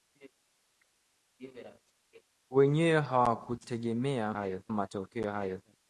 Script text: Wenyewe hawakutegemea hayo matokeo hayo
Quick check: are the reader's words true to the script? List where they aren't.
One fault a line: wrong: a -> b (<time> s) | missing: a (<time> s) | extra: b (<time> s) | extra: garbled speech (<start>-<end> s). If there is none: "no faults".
no faults